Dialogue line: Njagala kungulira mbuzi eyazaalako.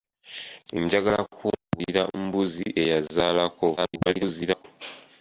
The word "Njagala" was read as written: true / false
true